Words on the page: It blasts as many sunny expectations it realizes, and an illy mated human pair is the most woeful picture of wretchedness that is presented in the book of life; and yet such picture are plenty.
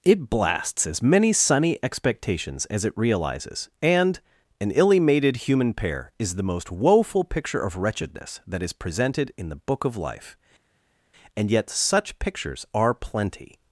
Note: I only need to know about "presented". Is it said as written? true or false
true